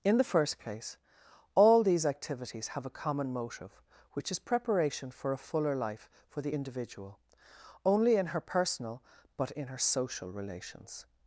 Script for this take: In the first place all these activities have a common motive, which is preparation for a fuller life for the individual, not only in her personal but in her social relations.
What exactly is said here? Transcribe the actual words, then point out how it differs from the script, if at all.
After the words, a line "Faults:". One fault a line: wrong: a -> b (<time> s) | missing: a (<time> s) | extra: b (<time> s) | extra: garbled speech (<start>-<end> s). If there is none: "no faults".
In the first place all these activities have a common motive, which is preparation for a fuller life for the individual, only in her personal but in her social relations.
Faults:
missing: not (7.2 s)